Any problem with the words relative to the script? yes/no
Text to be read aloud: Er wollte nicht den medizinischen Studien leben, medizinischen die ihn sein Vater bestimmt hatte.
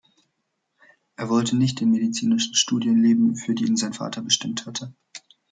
yes